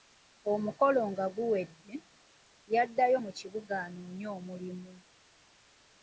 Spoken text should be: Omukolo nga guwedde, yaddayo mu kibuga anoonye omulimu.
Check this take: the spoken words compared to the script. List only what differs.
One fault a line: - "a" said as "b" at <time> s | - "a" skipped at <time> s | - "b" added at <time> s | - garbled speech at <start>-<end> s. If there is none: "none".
none